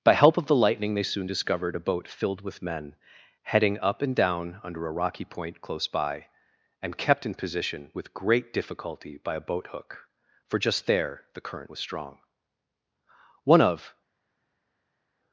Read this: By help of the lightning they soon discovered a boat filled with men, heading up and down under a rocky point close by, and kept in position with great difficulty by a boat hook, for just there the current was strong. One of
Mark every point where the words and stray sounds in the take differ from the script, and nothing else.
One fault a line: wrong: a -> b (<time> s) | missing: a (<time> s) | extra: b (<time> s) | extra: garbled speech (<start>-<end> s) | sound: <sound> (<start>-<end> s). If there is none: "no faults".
no faults